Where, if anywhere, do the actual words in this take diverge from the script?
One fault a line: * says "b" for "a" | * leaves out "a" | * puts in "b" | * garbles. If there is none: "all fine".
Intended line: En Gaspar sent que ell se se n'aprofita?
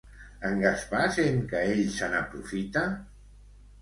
* leaves out "se"